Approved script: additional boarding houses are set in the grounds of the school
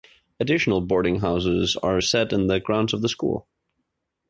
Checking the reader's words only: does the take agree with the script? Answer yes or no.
yes